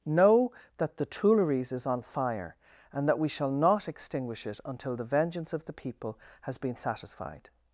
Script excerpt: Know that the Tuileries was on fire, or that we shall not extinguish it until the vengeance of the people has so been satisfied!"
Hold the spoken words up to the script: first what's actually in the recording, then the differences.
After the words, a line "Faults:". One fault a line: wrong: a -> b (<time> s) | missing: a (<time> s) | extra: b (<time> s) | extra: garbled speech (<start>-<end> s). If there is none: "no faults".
Know that the Tuileries is on fire, and that we shall not extinguish it until the vengeance of the people has been satisfied!"
Faults:
wrong: was -> is (1.7 s)
wrong: or -> and (2.9 s)
missing: so (6.6 s)